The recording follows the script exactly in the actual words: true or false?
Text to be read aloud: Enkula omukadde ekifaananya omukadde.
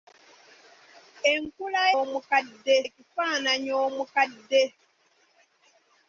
true